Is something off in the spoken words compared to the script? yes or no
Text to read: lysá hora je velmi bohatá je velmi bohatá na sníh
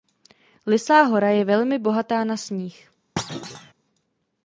yes